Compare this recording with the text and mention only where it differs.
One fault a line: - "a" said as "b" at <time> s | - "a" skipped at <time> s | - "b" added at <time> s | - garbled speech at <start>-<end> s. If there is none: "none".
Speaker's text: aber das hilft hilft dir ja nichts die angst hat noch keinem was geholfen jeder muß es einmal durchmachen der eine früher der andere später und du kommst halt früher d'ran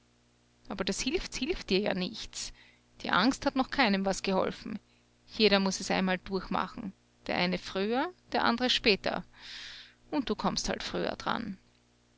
none